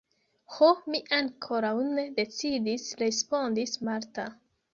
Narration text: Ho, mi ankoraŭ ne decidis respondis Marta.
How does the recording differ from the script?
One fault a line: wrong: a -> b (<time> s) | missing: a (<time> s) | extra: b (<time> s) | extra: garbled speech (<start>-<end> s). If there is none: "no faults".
no faults